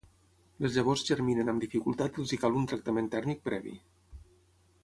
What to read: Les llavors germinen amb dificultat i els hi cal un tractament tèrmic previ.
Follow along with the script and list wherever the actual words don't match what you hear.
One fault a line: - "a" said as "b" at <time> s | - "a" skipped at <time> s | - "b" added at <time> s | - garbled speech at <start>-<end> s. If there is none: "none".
none